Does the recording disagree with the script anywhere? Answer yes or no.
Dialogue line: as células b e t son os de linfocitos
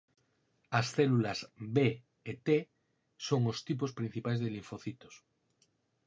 yes